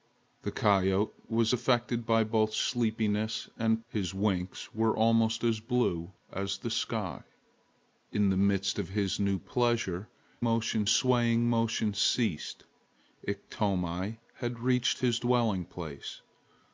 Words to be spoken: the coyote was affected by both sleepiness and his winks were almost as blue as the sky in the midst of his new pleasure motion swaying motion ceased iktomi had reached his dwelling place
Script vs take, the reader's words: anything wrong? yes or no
no